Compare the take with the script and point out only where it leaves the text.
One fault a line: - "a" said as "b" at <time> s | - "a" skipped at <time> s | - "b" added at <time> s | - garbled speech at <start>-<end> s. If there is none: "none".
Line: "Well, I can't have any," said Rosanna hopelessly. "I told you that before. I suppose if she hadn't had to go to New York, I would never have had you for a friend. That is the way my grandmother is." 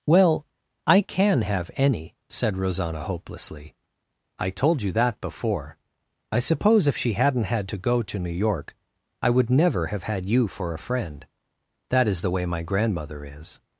- "can't" said as "can" at 1.0 s